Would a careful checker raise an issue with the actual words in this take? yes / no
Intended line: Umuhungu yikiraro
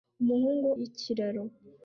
no